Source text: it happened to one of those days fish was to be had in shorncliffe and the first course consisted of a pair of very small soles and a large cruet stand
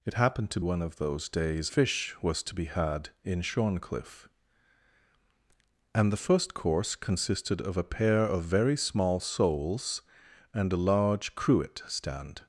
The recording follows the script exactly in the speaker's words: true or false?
true